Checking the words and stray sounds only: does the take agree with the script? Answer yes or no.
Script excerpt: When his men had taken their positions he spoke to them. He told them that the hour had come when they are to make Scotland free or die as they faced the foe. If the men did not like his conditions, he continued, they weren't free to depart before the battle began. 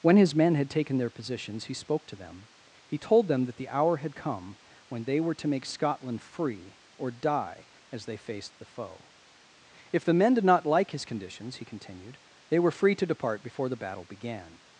no